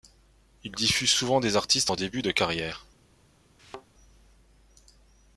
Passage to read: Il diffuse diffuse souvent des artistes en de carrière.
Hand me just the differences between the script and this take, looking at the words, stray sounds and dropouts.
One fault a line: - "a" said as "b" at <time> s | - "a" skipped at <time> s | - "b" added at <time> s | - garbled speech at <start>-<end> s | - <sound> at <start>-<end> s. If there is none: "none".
- "diffuse" skipped at 1.1 s
- "début" added at 2.0 s
- thud at 3.6-3.9 s